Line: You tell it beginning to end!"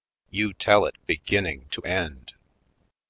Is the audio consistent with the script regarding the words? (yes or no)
yes